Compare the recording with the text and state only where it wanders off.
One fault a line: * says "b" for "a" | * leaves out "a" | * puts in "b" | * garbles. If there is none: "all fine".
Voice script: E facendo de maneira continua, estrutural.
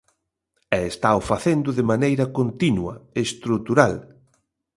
* puts in "estao"